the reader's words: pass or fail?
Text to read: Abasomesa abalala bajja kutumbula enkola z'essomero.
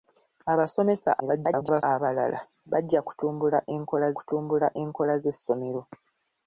fail